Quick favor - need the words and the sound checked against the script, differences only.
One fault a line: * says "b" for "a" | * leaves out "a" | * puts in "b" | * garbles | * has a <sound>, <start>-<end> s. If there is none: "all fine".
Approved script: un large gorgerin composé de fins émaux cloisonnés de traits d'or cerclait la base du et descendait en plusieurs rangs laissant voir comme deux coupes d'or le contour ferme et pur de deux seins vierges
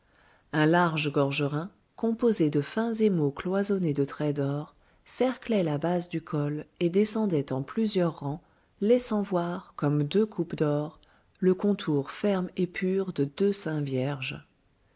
* puts in "col"